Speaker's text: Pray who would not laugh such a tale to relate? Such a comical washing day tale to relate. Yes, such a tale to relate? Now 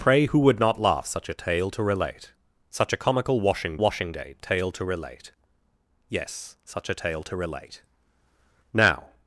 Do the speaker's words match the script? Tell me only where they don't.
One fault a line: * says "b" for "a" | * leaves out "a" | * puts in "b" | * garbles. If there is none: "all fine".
* puts in "washing"